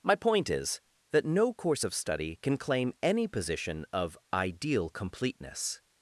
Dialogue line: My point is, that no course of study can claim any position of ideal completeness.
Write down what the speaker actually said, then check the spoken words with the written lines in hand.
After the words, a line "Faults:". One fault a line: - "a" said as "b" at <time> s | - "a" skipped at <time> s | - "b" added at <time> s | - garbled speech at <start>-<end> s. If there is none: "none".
My point is, that no course of study can claim any position of ideal completeness.
Faults:
none